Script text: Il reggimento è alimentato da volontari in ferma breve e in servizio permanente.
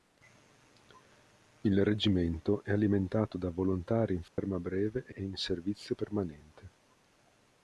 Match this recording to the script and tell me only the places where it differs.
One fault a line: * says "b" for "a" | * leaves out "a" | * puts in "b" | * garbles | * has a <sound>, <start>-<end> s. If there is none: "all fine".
* has a dropout, 4.3-4.4 s
* puts in "e"